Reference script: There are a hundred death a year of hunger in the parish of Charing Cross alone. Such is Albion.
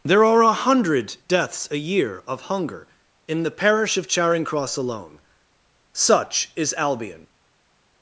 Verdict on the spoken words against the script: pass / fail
fail